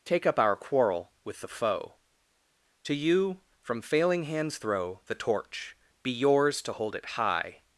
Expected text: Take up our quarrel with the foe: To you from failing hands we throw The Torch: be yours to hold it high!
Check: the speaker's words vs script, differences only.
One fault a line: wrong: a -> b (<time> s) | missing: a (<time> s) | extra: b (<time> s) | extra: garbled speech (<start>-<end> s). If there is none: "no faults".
missing: we (4.6 s)